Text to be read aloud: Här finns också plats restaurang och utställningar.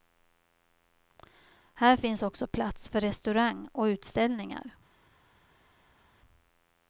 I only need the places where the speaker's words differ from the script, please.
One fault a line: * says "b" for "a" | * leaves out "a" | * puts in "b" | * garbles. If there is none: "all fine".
* puts in "för"